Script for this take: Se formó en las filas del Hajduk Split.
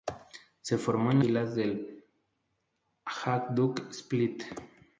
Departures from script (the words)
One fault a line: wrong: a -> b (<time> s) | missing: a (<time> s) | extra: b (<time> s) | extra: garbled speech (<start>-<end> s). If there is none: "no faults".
missing: las (1.2 s)